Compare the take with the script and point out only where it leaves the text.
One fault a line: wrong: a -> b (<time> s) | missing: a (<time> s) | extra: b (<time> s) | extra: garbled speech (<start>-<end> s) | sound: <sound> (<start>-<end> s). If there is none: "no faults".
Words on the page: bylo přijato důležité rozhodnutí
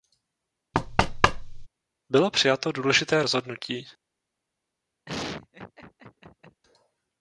sound: thud (0.7-1.7 s)
sound: laugh (5.1-6.6 s)